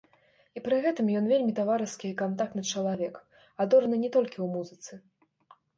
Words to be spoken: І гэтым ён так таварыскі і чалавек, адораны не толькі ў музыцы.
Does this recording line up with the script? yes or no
no